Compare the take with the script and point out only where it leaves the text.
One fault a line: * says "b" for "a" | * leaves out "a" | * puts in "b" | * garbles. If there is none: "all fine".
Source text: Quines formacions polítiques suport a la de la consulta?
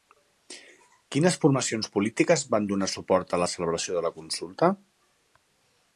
* puts in "van donar"
* puts in "celebració"